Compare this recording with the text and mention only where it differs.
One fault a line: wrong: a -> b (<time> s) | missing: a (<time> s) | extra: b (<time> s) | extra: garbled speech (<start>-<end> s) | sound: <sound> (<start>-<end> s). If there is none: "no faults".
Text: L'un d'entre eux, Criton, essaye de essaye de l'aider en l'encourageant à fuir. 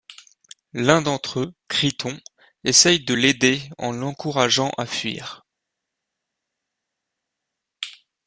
missing: essaye de (3.1 s)